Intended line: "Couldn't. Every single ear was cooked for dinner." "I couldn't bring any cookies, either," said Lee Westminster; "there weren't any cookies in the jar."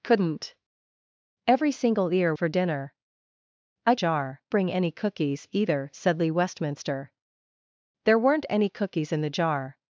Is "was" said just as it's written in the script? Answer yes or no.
no